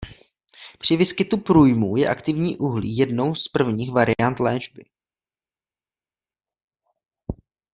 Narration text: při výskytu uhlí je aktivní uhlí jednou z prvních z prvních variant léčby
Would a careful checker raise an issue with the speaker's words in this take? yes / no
yes